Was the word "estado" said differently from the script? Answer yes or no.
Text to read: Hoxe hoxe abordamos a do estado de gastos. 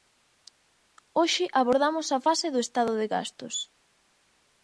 no